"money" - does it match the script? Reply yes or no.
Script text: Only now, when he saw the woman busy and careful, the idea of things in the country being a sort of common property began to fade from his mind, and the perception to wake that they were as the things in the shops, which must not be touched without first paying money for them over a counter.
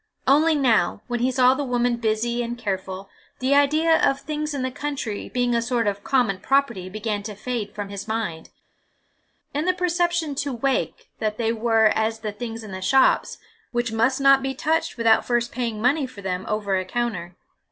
yes